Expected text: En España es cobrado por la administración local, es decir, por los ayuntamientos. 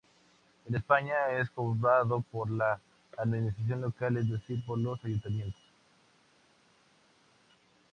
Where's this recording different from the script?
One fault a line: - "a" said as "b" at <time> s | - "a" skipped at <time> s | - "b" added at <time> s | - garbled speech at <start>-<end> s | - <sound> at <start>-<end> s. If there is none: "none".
none